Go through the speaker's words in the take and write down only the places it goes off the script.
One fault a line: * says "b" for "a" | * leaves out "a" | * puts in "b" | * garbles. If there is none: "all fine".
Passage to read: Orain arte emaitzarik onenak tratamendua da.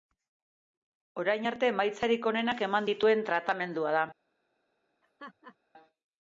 * puts in "eman dituen"